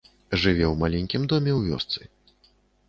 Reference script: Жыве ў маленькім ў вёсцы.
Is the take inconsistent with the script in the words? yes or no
yes